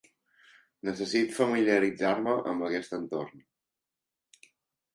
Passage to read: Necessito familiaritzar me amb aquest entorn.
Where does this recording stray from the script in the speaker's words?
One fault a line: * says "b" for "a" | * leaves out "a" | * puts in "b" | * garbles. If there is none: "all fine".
all fine